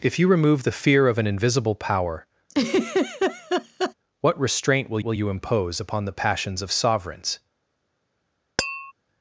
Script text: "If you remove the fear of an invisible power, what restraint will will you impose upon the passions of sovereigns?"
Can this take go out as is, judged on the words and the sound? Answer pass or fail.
fail